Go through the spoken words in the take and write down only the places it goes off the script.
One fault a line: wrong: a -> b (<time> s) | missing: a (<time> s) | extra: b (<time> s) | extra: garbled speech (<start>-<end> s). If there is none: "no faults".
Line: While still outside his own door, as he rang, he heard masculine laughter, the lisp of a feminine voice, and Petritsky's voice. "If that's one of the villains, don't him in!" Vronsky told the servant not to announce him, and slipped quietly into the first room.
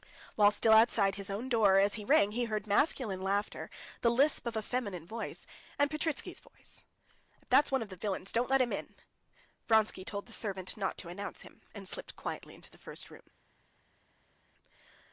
extra: let (8.5 s)